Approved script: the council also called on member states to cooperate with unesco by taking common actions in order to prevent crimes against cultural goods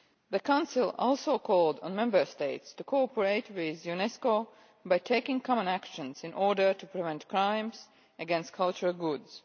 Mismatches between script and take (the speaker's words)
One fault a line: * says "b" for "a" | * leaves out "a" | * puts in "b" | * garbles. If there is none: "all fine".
all fine